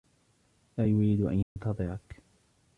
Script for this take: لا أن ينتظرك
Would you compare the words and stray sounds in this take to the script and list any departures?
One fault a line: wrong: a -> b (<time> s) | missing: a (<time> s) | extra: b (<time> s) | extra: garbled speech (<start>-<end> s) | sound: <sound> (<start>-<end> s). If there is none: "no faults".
extra: يريد (0.9 s)
sound: dropout (1.4-1.6 s)